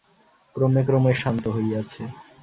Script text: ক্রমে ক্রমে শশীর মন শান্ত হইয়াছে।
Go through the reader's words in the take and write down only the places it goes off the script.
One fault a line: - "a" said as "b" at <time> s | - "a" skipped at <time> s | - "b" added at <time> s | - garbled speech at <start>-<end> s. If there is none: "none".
- "শশীর মন" skipped at 1.1 s